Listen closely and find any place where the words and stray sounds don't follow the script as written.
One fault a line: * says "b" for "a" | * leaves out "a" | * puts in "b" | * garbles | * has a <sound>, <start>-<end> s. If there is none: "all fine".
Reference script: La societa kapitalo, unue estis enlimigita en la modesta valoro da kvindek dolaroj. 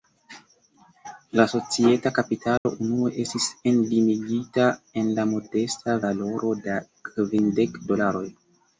* has a dropout, 2.6-2.7 s